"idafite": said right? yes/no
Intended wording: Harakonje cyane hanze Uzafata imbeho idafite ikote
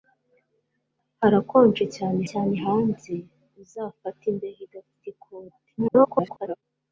yes